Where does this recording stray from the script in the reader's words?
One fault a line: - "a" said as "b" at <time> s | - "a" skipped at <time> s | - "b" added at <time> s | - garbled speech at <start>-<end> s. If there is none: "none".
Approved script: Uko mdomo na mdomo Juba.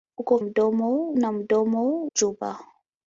none